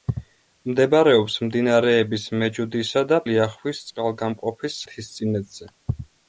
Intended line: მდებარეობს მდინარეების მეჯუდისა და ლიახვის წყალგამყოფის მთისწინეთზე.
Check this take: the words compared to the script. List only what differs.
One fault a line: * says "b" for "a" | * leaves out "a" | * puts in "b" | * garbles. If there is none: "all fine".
all fine